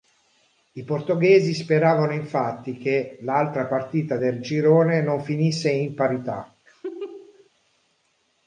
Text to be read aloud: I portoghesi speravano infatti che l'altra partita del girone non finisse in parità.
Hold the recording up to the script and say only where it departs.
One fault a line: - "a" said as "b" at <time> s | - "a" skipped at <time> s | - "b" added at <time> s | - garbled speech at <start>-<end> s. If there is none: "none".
none